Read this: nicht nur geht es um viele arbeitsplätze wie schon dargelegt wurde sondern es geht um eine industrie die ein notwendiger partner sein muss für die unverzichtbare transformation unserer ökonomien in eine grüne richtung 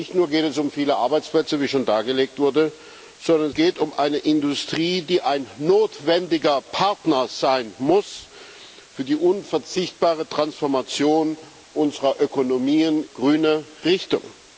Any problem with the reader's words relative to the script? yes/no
yes